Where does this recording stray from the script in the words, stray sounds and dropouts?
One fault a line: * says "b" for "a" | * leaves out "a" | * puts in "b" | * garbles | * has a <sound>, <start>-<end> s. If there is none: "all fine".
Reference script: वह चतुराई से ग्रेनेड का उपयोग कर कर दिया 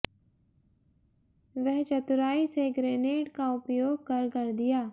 all fine